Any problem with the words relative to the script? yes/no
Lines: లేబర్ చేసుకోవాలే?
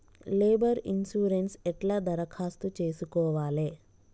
yes